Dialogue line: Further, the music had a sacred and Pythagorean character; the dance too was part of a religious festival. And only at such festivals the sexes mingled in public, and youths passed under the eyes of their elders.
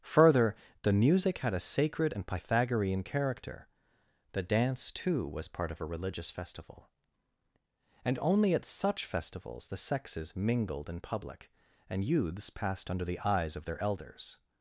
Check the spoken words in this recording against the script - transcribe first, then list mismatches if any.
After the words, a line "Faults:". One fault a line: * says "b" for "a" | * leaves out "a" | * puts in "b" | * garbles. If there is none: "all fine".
Further, the music had a sacred and Pythagorean character; the dance too was part of a religious festival. And only at such festivals the sexes mingled in public, and youths passed under the eyes of their elders.
Faults:
all fine